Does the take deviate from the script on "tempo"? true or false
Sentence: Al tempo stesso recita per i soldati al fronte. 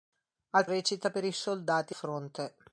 true